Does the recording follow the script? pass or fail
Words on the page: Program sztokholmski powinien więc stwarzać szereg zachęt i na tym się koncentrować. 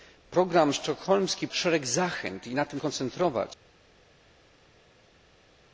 fail